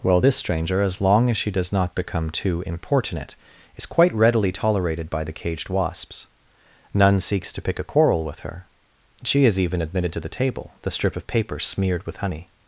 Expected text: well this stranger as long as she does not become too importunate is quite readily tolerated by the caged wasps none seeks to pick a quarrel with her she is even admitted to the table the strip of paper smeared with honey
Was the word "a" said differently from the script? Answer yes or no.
no